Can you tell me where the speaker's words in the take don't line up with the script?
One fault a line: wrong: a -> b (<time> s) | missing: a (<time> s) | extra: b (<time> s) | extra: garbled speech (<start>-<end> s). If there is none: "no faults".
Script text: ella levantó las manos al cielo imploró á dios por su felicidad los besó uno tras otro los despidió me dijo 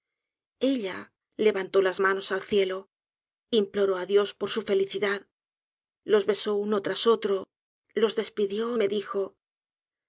no faults